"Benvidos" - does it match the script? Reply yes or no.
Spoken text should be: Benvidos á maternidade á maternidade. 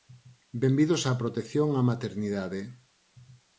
yes